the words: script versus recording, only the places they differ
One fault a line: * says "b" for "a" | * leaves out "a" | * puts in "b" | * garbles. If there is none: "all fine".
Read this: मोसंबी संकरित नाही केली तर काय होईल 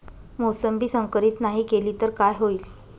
all fine